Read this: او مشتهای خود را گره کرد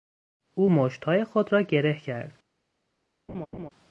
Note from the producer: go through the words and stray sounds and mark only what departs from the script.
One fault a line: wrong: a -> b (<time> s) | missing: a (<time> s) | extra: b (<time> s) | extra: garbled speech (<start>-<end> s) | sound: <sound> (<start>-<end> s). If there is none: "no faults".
sound: laugh (3.3-3.7 s)